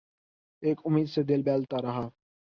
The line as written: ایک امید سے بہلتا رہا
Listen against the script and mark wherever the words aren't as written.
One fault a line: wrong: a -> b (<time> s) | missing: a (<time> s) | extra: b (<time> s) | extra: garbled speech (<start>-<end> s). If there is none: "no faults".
extra: دل (1.2 s)